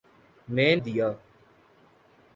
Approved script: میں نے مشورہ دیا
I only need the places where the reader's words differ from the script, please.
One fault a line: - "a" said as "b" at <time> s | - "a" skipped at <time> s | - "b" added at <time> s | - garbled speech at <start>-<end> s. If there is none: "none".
- "نے مشورہ" skipped at 0.7 s